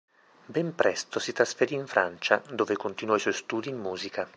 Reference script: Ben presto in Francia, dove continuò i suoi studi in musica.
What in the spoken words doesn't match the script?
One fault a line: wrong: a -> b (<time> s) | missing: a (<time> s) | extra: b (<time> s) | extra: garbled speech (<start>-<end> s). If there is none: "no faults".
extra: si trasferì (1.2 s)